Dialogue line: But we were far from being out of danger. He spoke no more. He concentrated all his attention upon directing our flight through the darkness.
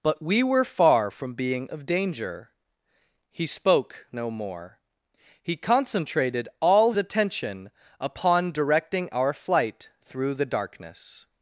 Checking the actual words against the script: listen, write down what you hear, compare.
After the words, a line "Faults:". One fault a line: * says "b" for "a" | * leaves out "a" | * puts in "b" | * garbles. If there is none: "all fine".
But we were far from being of danger. He spoke no more. He concentrated all attention upon directing our flight through the darkness.
Faults:
* leaves out "out"
* leaves out "his"